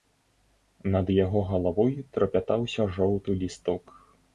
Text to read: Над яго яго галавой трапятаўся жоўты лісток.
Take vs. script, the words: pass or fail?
fail